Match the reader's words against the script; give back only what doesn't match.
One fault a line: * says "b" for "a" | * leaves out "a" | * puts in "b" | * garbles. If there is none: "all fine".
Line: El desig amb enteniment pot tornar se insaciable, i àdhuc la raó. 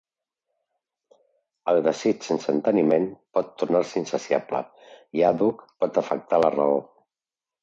* says "sense" for "amb"
* puts in "pot afectar"